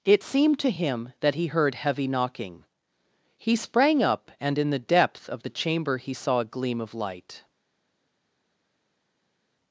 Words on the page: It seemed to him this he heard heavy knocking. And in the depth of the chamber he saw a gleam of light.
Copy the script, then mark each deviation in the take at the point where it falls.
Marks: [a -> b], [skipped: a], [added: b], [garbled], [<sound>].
It seemed to him [this -> that] he heard heavy knocking. [added: He sprang up] And in the depth of the chamber he saw a gleam of light.